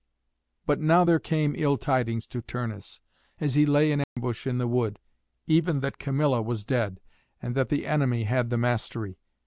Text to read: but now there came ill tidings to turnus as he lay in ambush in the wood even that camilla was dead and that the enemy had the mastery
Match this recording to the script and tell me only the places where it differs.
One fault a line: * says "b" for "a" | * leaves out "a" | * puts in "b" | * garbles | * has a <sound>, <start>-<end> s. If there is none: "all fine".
* has a dropout, 4.0-4.2 s